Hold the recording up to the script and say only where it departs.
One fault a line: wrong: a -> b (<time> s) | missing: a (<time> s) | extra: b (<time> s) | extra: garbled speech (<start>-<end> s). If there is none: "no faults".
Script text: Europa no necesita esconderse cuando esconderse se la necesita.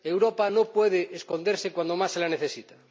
wrong: necesita -> puede (0.7 s)
wrong: esconderse -> más (2.0 s)